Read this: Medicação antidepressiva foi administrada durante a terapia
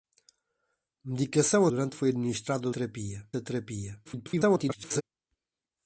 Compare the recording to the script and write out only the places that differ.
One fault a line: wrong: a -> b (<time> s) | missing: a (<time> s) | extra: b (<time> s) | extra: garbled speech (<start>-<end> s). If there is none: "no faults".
wrong: antidepressiva -> durante (1.7 s)
wrong: durante -> terapia (2.7 s)
extra: garbled speech (4.0-5.0 s)